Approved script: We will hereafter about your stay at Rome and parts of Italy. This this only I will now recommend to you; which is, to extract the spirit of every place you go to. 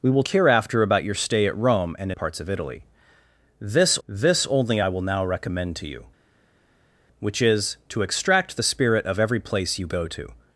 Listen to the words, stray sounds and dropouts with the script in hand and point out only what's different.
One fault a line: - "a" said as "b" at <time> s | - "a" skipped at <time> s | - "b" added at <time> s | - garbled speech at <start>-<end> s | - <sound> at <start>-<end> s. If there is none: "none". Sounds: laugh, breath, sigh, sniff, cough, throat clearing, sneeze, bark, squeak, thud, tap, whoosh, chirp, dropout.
none